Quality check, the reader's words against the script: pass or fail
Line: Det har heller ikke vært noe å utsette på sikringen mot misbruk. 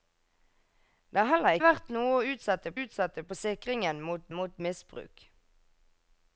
fail